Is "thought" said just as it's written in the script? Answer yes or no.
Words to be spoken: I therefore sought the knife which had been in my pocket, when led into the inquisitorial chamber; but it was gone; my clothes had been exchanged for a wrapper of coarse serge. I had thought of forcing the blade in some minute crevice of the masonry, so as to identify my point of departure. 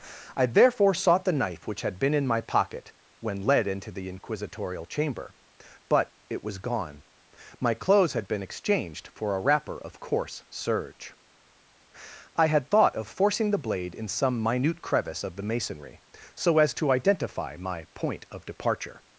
yes